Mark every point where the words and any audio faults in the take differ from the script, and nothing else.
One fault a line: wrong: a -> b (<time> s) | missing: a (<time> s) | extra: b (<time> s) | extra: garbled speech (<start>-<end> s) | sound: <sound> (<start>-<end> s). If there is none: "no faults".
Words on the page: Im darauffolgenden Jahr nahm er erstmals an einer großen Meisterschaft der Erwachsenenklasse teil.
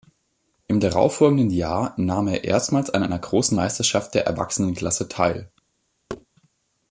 sound: thud (6.1-6.3 s)